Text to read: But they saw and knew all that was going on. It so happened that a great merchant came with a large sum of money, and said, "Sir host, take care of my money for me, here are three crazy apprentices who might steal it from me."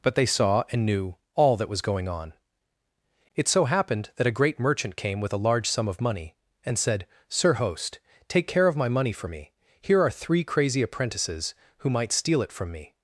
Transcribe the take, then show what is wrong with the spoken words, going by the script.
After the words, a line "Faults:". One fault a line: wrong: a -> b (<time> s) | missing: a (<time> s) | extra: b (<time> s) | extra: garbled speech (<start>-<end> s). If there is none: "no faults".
But they saw and knew all that was going on. It so happened that a great merchant came with a large sum of money, and said, "Sir host, take care of my money for me, here are three crazy apprentices who might steal it from me."
Faults:
no faults